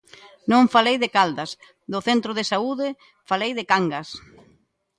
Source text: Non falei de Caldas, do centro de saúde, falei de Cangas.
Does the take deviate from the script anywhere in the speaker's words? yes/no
no